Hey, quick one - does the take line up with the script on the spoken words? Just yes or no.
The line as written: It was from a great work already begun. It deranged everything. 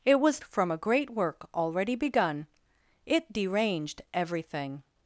yes